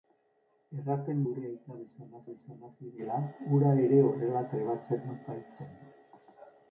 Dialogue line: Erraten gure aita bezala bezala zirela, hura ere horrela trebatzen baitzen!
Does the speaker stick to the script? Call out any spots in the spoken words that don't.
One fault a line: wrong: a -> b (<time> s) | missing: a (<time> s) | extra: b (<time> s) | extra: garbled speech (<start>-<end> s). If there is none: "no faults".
no faults